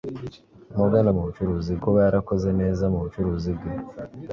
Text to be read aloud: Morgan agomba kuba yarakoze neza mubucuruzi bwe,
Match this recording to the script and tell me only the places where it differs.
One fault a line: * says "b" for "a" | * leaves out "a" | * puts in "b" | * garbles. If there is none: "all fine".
* says "mubucuruzi" for "agomba"